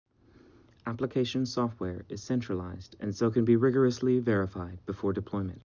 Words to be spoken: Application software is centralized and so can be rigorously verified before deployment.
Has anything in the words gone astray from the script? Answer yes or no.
no